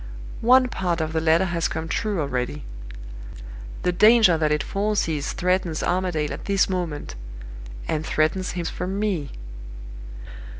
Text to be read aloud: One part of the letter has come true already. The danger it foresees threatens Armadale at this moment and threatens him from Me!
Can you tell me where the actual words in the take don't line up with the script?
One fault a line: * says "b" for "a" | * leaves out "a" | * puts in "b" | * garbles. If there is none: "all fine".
* puts in "that"